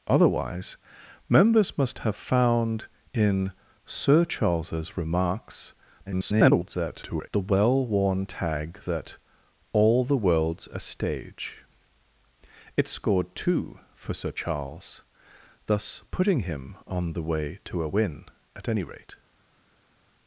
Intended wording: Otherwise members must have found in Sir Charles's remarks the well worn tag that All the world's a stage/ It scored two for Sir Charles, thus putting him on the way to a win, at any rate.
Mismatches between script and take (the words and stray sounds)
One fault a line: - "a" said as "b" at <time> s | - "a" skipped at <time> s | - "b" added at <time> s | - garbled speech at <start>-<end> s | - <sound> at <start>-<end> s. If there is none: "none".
- garbled speech at 6.1-7.3 s